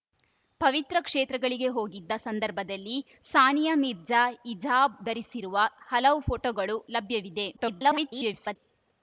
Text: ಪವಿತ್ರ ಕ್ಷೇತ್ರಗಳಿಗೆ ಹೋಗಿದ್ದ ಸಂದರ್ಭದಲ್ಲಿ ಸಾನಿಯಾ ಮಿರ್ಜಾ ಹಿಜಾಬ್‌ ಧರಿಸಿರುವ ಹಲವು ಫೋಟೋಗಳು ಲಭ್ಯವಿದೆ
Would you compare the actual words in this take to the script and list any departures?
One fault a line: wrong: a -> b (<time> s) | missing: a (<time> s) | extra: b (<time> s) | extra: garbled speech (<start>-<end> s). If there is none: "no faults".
extra: garbled speech (7.6-8.6 s)